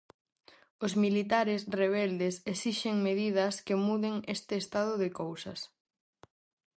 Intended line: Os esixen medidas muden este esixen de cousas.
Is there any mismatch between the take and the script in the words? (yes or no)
yes